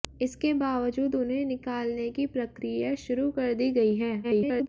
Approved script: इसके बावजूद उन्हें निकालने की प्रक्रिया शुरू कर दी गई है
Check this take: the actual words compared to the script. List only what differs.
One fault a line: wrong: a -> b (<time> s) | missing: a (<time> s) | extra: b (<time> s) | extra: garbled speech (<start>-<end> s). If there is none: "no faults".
extra: garbled speech (4.2-4.7 s)